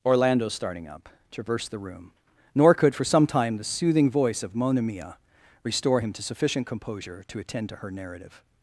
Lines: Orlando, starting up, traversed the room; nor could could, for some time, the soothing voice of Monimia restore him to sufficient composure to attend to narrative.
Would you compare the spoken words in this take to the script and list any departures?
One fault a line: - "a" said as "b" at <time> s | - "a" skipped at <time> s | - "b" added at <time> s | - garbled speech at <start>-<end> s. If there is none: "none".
- "could" skipped at 3.0 s
- "her" added at 7.8 s